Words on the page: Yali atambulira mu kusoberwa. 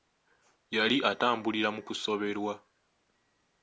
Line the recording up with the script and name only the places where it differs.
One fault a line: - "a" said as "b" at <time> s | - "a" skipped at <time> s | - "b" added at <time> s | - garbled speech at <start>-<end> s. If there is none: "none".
none